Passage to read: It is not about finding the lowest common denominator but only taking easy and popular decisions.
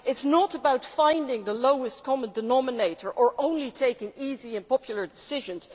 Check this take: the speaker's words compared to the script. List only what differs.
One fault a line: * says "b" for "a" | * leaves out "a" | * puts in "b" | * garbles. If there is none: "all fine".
* says "or" for "but"